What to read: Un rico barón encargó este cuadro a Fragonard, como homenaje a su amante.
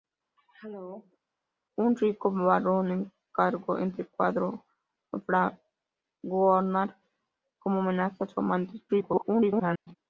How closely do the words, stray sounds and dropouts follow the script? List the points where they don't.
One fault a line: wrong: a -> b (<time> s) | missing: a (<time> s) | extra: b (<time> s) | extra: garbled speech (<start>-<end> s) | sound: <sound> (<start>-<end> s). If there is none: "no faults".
sound: throat clearing (0.4-1.2 s)
extra: garbled speech (8.9-9.9 s)